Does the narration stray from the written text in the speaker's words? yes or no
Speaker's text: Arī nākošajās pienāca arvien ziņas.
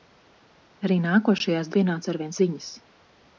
no